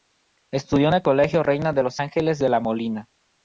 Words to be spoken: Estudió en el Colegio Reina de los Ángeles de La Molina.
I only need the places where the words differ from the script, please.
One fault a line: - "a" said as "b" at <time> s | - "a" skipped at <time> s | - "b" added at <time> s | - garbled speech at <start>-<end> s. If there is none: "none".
none